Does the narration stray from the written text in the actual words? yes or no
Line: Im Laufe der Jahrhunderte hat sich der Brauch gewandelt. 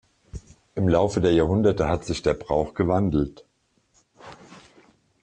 no